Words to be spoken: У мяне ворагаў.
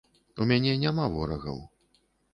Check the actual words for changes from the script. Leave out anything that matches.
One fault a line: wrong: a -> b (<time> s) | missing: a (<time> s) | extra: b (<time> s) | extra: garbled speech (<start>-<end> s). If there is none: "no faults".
extra: няма (0.8 s)